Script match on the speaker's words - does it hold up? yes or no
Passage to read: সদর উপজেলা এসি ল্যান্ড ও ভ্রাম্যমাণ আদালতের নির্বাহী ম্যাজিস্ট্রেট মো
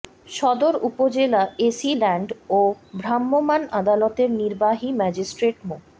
yes